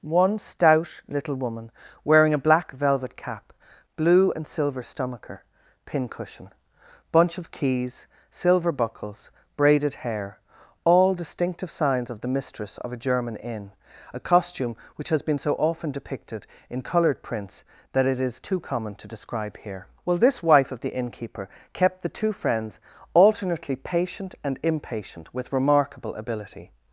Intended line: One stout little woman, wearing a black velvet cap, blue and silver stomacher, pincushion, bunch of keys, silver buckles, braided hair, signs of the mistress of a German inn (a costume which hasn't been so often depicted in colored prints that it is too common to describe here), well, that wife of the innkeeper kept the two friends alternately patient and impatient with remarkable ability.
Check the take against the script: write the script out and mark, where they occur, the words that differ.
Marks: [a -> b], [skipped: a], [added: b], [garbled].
One stout little woman, wearing a black velvet cap, blue and silver stomacher, pincushion, bunch of keys, silver buckles, braided hair, [added: all distinctive] signs of the mistress of a German inn (a costume which [hasn't -> has] been so often depicted in colored prints that it is too common to describe here), well, [that -> this] wife of the innkeeper kept the two friends alternately patient and impatient with remarkable ability.